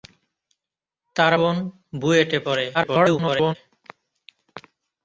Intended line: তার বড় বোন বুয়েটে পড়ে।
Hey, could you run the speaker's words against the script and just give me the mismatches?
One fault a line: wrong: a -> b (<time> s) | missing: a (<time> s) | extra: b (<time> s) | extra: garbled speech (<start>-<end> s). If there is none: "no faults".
missing: বড় (1.3 s)
extra: garbled speech (2.7-3.6 s)